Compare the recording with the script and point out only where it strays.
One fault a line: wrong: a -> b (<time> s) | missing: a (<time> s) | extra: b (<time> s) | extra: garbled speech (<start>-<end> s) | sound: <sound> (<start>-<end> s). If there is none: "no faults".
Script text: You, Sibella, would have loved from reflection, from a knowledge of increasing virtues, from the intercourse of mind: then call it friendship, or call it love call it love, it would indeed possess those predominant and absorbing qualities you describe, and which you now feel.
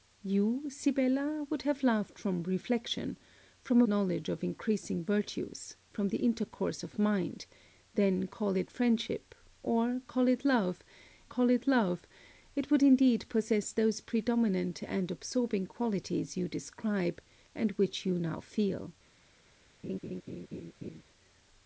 sound: laugh (19.8-21.0 s)